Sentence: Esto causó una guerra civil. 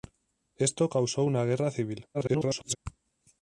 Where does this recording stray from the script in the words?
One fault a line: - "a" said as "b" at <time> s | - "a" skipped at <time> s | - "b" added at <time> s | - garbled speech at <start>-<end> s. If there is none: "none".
- garbled speech at 2.1-2.8 s